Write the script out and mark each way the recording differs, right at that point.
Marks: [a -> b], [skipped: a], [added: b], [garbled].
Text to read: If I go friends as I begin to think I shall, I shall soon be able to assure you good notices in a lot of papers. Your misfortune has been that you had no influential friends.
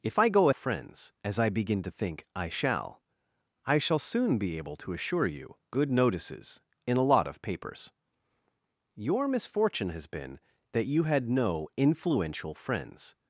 If I go friends as I begin to think I shall, I shall soon be able to assure you good notices in a lot of papers. Your misfortune has been that you had no influential friends.